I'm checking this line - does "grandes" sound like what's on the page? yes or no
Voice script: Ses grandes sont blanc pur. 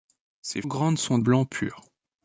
yes